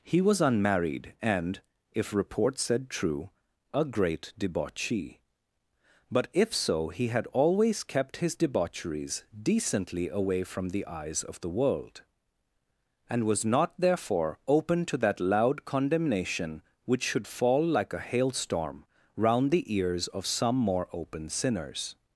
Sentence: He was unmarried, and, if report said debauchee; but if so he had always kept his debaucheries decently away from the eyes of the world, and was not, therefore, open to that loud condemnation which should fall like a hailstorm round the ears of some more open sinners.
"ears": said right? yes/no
yes